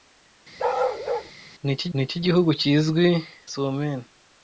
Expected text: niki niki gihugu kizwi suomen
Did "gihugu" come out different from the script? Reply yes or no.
no